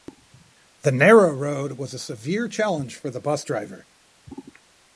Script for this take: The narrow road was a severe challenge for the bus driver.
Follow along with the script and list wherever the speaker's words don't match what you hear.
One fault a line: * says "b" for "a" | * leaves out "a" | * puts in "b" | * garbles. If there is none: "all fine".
all fine